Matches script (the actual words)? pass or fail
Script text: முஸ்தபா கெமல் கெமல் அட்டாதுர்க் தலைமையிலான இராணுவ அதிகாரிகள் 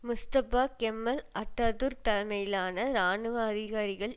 fail